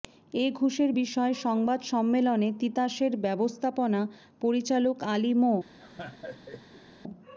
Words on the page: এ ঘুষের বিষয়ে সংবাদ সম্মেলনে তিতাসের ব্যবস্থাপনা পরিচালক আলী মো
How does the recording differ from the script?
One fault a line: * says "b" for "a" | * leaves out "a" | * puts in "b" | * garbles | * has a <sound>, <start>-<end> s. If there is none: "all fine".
* has a laugh, 5.8-6.9 s